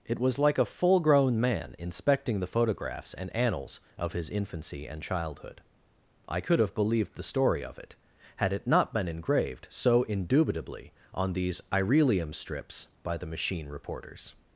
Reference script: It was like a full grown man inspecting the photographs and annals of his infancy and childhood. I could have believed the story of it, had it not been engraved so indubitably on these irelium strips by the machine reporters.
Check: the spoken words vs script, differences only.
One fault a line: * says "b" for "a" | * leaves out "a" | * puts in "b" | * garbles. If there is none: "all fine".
all fine